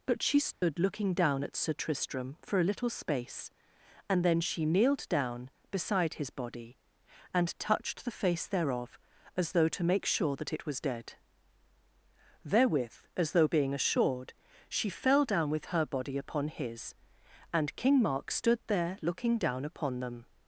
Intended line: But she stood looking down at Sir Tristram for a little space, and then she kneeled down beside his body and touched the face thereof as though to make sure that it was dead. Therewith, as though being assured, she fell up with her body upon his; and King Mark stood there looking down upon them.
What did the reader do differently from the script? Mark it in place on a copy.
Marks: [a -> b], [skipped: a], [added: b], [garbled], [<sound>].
But she stood [dropout] looking down at Sir Tristram for a little space, and then she kneeled down beside his body and touched the face thereof as though to make sure that it was dead. Therewith, as though being assured, she fell [up -> down] with her body upon his; and King Mark stood there looking down upon them.